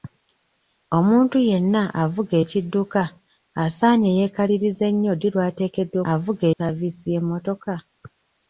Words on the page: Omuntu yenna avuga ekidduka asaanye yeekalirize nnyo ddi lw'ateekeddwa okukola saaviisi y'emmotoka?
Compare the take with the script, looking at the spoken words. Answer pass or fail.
fail